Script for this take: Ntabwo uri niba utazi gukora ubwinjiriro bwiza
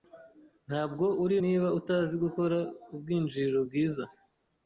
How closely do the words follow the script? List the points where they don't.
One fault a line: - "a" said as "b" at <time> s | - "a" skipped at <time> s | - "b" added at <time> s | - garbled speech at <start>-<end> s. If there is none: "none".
none